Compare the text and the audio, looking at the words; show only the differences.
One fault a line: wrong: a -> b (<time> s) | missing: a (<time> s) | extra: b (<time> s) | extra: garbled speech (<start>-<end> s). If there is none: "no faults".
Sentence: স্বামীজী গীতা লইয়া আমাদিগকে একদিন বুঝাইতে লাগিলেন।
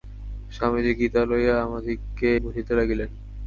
missing: একদিন (2.3 s)